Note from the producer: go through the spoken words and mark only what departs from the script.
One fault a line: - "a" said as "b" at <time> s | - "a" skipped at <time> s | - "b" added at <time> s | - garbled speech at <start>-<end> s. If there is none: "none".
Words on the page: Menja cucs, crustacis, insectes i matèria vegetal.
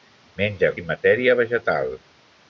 - "cucs crustacis insectes" skipped at 0.7 s